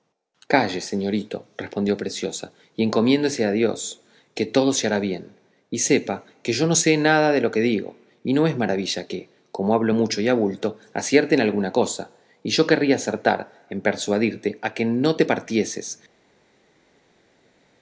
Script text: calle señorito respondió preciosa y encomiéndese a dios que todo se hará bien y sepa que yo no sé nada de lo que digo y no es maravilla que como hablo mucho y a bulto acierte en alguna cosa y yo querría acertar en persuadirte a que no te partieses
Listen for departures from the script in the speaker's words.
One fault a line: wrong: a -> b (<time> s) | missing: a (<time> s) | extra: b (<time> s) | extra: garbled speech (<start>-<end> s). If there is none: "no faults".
no faults